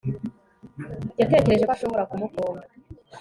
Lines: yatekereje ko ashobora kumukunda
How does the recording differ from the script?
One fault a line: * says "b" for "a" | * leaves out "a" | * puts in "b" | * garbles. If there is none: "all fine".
all fine